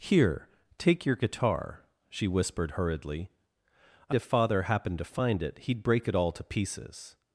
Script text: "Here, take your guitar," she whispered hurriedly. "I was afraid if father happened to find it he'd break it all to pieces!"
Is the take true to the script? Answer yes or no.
no